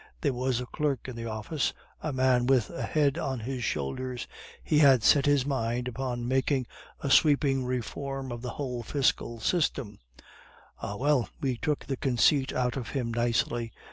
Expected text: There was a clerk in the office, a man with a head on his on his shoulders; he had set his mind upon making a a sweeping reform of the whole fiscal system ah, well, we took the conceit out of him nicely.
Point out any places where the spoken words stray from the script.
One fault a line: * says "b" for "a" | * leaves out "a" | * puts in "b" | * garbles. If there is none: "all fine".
* leaves out "on his"
* leaves out "a"